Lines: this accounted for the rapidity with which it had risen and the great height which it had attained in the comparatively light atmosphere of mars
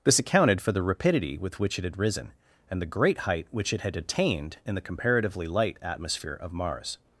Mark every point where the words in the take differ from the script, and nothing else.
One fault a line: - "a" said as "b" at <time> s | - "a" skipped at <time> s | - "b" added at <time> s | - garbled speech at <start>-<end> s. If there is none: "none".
none